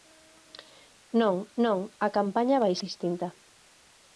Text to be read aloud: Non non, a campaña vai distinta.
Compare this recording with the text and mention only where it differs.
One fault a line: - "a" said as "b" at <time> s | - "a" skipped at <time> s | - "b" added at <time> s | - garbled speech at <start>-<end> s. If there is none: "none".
none